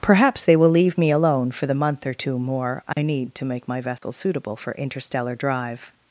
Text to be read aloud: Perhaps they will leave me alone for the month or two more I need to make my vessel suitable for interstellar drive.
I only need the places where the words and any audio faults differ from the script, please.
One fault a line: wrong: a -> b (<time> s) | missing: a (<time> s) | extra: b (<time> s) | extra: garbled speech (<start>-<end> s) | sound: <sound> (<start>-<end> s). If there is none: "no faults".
sound: dropout (2.9-3.0 s)
sound: dropout (4.0-4.0 s)